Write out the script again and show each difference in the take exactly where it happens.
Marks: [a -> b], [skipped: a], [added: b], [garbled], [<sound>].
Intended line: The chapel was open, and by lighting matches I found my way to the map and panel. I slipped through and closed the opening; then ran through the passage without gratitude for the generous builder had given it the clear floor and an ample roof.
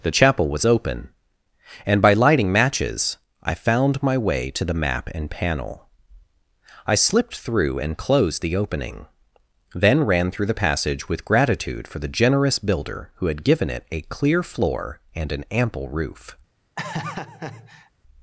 The chapel was open, and by lighting matches I found my way to the map and panel. I slipped through and closed the opening; then ran through the passage [without -> with] gratitude for the generous builder [added: who] had given it [the -> a] clear floor and an ample roof. [laugh]